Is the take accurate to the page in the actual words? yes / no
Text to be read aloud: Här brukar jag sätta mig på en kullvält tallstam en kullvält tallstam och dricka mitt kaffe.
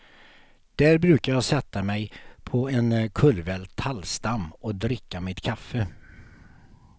no